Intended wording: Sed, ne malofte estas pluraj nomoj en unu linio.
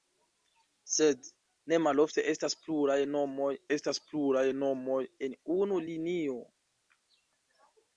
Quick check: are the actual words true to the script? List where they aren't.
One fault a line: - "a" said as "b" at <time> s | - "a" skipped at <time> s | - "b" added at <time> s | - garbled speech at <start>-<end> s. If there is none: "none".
- "estas pluraj nomoj" added at 3.8 s